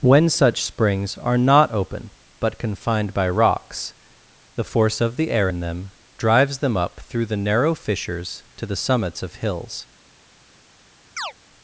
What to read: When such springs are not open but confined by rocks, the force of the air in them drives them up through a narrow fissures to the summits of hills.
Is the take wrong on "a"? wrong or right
wrong